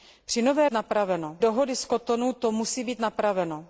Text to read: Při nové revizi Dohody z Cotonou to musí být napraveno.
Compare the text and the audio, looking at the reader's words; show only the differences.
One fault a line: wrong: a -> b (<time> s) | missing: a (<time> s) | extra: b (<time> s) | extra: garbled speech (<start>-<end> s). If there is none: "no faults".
wrong: revizi -> napraveno (0.7 s)